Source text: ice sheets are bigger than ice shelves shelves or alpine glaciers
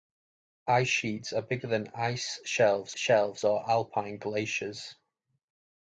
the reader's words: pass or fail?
pass